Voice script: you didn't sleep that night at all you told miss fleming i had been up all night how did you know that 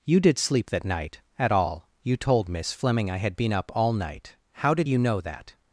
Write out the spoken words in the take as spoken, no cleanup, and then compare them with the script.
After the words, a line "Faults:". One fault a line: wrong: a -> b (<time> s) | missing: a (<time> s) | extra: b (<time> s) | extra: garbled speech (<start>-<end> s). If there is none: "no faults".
you did sleep that night at all you told miss fleming i had been up all night how did you know that
Faults:
wrong: didn't -> did (0.2 s)